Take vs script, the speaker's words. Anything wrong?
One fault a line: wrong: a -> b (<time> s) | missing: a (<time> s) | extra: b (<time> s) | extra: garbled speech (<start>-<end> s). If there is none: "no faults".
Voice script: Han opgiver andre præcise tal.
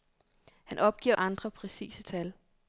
no faults